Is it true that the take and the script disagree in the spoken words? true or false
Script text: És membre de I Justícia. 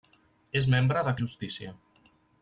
false